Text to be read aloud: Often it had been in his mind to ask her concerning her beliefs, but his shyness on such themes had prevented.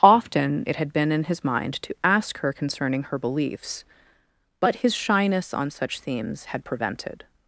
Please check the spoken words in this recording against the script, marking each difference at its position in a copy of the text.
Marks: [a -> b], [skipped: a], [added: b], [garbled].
Often it had been in his mind to ask her concerning her beliefs, but his shyness on such themes had prevented.